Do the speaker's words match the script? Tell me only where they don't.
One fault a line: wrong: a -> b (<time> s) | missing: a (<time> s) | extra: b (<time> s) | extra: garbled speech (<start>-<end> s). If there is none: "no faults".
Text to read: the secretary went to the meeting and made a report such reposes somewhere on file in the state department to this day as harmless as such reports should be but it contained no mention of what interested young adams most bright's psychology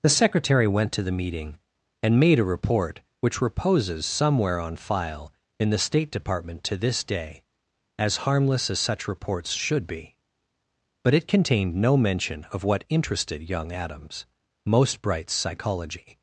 wrong: such -> which (3.2 s)